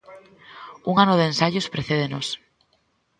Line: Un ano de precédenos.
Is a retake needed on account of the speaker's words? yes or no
yes